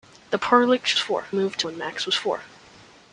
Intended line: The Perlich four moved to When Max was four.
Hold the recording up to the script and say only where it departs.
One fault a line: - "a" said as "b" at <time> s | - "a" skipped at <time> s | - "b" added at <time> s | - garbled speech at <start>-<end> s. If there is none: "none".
none